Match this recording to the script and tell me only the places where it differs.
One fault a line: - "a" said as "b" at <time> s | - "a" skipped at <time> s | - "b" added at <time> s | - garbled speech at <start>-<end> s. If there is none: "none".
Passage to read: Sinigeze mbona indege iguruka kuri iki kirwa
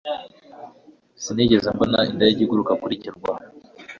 - "iki" skipped at 2.9 s